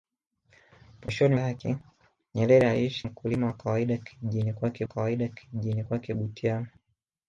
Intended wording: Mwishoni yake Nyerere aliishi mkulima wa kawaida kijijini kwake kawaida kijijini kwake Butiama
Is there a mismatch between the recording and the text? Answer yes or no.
no